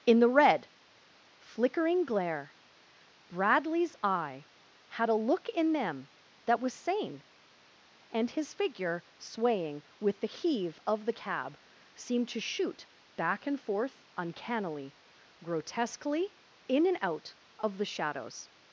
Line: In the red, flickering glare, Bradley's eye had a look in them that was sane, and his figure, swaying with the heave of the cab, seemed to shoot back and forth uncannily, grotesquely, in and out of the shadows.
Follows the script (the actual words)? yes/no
yes